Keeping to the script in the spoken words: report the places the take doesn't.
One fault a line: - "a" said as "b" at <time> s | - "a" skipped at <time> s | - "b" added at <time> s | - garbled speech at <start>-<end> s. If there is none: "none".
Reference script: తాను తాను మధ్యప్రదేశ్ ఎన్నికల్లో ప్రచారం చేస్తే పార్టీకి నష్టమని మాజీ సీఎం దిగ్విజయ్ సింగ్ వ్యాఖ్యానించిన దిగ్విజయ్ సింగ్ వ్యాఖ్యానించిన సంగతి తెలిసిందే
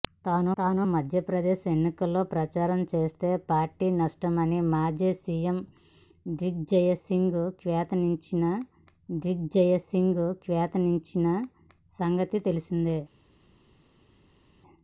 none